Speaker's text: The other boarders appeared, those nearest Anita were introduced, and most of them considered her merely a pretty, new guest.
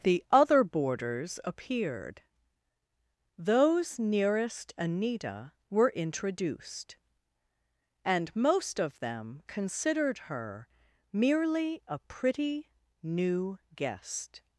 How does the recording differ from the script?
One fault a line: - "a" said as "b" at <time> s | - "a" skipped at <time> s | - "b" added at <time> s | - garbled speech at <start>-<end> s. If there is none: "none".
none